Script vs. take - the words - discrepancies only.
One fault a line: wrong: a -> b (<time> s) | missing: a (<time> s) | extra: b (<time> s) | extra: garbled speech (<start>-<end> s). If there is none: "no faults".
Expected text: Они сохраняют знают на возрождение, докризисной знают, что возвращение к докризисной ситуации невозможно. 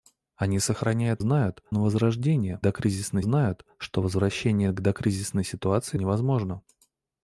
no faults